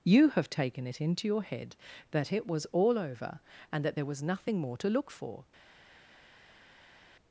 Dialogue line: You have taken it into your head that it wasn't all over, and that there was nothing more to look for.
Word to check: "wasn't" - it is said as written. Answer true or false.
false